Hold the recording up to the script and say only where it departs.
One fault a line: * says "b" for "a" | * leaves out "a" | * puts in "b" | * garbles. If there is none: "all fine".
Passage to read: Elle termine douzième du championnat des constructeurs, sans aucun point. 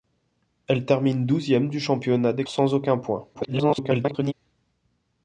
* leaves out "constructeurs"
* garbles